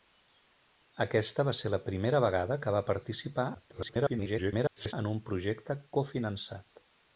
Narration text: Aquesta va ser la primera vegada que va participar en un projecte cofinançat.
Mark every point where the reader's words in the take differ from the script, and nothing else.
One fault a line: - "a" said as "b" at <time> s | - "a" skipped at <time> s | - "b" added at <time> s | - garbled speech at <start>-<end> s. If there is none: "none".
- garbled speech at 3.5-4.9 s